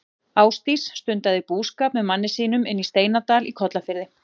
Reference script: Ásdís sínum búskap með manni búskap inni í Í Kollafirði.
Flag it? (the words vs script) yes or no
yes